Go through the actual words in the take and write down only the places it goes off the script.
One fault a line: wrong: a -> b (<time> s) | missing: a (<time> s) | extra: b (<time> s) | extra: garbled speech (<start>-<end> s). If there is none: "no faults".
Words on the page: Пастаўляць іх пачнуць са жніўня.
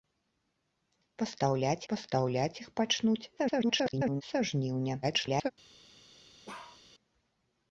extra: пастаўляць (1.9 s)
extra: garbled speech (3.4-4.2 s)
extra: garbled speech (5.0-5.5 s)